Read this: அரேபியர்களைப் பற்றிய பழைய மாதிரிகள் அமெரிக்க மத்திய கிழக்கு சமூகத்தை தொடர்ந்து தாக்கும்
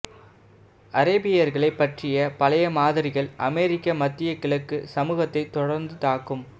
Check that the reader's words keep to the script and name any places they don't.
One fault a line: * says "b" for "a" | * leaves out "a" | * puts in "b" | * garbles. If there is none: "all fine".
all fine